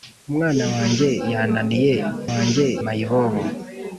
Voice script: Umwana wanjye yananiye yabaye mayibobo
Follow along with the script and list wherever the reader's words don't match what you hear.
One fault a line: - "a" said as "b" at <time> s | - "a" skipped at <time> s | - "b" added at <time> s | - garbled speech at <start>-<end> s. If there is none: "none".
- "yabaye" said as "wanjye" at 2.3 s